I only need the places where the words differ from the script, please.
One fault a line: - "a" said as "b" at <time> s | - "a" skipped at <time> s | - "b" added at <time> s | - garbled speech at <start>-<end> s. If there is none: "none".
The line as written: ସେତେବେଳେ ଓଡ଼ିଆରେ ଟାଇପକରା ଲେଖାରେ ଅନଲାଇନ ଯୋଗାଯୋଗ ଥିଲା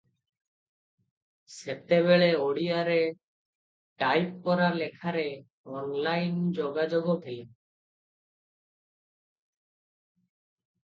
none